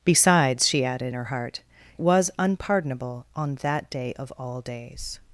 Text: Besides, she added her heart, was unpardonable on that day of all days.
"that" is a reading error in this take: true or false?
false